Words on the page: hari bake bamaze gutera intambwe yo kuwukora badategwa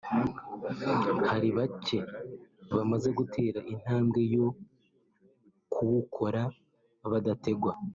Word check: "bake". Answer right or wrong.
right